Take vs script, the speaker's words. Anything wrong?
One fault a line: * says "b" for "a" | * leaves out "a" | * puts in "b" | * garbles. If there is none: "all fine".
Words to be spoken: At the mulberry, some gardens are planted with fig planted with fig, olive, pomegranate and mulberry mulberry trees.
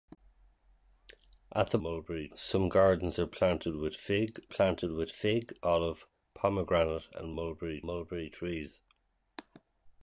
all fine